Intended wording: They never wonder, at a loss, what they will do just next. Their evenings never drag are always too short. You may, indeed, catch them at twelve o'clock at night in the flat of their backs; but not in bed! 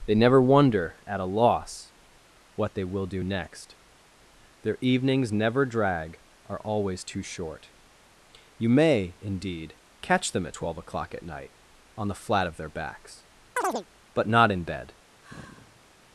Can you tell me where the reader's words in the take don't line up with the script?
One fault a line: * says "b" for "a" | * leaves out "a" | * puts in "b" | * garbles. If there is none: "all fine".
* leaves out "just"
* says "on" for "in"